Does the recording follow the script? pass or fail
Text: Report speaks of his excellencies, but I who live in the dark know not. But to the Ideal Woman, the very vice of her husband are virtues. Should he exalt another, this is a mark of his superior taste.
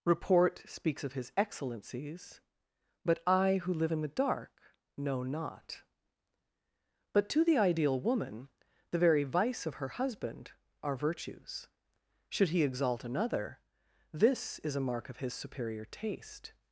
pass